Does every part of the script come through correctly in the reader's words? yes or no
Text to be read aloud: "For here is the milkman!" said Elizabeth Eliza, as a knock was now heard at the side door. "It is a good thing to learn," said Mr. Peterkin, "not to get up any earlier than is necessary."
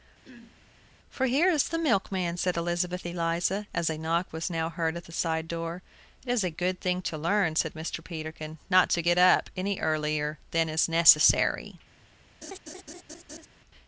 yes